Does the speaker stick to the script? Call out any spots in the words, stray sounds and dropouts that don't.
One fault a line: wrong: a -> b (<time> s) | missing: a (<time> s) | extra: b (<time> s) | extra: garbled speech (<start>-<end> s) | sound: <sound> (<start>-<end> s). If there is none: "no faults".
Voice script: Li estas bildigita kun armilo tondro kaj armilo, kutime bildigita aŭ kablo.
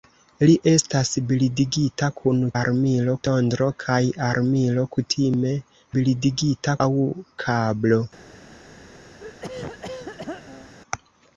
sound: throat clearing (9.2-10.7 s)